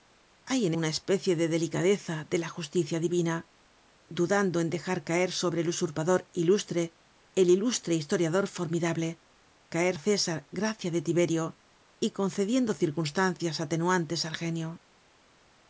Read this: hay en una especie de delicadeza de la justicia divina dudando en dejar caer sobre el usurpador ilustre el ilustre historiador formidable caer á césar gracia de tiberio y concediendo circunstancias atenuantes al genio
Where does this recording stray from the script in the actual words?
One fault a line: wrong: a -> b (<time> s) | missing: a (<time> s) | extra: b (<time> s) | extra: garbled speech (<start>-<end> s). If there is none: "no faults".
no faults